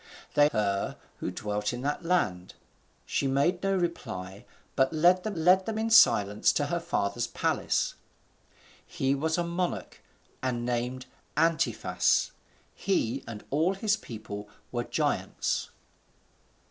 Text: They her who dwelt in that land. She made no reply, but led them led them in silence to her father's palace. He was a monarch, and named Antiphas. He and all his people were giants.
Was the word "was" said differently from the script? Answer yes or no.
no